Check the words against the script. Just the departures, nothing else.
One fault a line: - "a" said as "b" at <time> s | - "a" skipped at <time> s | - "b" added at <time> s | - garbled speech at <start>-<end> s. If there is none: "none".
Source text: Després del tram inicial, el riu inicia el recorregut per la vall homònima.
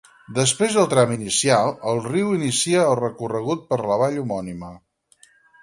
none